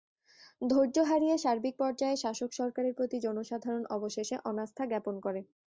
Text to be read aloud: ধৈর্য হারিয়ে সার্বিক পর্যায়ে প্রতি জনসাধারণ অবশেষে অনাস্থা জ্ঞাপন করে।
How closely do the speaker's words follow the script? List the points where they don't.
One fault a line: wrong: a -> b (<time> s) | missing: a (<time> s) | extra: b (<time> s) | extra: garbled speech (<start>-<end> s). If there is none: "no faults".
extra: শাসক সরকারের (2.2 s)